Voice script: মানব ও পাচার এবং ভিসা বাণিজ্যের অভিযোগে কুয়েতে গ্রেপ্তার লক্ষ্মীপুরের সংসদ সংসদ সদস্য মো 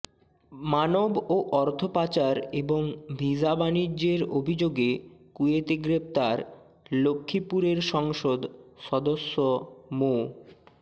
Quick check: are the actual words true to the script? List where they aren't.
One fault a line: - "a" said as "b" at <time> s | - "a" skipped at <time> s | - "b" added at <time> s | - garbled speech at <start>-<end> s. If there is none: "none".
- "অর্থ" added at 1.6 s
- "সংসদ" skipped at 8.4 s